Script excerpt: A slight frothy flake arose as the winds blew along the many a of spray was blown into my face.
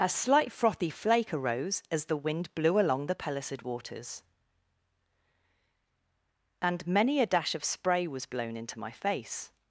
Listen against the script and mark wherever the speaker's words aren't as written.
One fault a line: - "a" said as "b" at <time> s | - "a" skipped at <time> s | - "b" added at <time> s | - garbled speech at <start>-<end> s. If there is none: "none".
- "winds" said as "wind" at 2.2 s
- "pellucid waters and" added at 3.1 s
- "dash" added at 7.3 s